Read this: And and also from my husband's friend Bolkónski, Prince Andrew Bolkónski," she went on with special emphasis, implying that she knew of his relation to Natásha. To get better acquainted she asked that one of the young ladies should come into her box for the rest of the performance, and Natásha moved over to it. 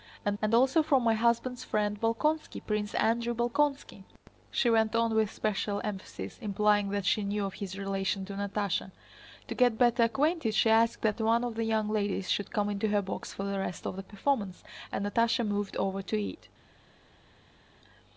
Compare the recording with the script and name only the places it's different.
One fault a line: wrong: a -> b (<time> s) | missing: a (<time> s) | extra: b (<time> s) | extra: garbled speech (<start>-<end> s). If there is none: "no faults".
no faults